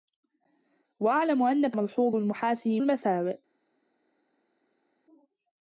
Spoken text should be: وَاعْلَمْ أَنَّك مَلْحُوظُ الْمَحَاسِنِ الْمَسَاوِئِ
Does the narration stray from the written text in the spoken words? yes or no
no